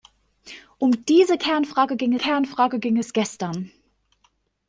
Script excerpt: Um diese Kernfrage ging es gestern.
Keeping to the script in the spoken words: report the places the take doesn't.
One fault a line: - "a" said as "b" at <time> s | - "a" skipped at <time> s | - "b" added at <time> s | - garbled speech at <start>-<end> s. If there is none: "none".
- "Kernfrage ging" added at 2.2 s